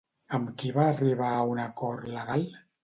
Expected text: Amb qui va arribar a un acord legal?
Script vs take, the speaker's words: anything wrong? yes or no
no